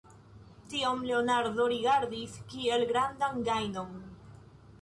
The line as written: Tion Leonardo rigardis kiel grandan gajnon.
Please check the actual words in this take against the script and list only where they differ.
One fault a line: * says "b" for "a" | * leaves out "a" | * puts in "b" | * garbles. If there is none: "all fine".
all fine